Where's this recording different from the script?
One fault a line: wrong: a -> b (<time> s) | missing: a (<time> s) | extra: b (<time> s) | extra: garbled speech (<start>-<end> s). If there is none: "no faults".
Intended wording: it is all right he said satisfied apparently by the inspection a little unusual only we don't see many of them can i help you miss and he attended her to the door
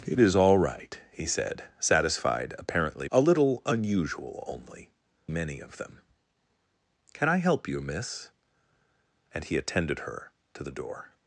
missing: by the inspection (3.1 s)
missing: we don't see (4.9 s)